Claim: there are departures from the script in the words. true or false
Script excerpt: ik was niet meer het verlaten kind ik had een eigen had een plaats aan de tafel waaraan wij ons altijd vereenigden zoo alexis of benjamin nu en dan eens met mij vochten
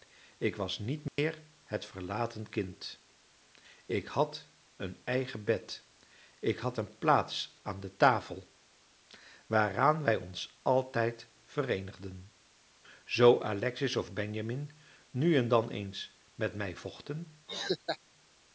true